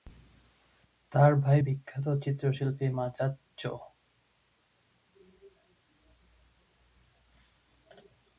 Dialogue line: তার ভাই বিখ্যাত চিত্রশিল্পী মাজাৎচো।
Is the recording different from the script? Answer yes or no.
no